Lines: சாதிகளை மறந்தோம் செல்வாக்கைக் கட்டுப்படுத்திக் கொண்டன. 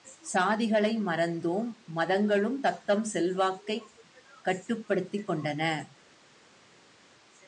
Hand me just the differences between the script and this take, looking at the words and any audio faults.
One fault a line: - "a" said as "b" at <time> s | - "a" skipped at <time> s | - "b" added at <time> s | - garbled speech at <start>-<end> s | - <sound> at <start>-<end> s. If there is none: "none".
- "மதங்களும் தத்தம்" added at 2.0 s